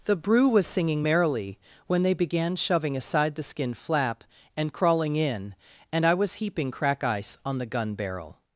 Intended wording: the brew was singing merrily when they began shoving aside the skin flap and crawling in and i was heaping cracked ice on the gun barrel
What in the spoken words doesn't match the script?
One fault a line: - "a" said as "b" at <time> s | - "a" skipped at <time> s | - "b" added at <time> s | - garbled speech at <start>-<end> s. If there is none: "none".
- "cracked" said as "crack" at 6.7 s